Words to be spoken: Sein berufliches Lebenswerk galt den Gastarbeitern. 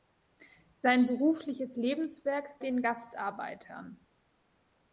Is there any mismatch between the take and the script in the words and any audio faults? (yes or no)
yes